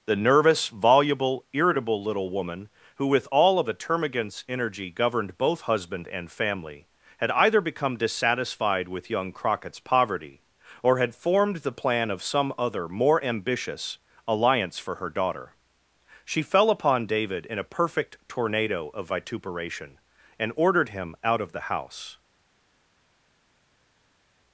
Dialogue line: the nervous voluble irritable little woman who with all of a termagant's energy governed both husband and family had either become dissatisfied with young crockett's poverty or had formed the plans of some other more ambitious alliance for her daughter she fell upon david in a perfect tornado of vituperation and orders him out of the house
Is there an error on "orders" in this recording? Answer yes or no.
yes